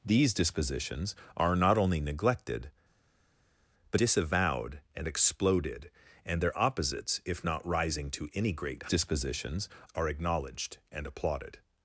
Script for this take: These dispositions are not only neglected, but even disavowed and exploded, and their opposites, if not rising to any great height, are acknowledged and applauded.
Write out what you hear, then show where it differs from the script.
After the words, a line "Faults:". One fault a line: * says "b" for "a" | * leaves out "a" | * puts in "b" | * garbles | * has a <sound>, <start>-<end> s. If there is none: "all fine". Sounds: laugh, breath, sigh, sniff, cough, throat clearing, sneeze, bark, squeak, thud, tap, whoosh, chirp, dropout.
These dispositions are not only neglected, but disavowed and exploded, and their opposites, if not rising to any great dispositions, are acknowledged and applauded.
Faults:
* leaves out "even"
* says "dispositions" for "height"